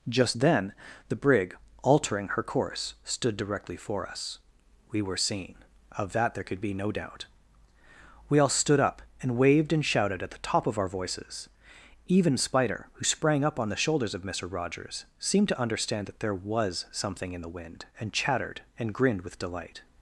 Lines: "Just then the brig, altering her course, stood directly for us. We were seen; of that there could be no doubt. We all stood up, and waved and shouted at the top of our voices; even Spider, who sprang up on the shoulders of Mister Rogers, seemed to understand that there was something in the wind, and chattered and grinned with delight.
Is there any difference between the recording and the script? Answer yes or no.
no